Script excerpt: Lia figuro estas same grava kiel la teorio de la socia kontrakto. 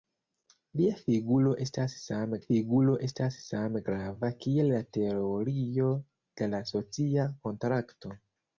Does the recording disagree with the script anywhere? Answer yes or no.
yes